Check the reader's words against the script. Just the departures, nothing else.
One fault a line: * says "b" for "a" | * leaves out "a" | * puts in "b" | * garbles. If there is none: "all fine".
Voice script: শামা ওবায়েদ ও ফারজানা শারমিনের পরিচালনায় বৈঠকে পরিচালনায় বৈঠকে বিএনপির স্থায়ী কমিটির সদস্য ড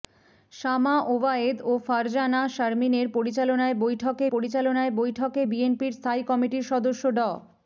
all fine